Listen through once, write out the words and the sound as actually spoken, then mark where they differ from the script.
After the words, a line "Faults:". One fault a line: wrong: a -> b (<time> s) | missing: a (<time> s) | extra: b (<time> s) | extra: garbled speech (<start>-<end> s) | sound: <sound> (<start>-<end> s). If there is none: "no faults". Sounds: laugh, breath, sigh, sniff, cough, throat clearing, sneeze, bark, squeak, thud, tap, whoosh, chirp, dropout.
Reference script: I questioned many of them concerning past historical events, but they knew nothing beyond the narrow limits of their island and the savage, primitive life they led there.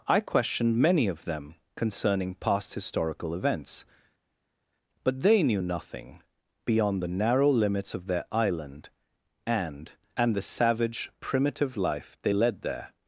I questioned many of them concerning past historical events, but they knew nothing beyond the narrow limits of their island and and the savage, primitive life they led there.
Faults:
extra: and (10.2 s)